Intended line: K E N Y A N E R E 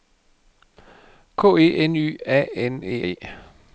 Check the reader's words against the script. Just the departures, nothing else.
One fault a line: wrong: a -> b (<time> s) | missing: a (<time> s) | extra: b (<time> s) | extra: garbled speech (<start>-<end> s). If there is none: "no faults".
missing: R (3.1 s)